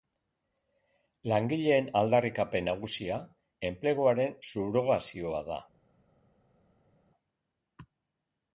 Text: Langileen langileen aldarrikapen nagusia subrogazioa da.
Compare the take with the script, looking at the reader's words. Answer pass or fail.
fail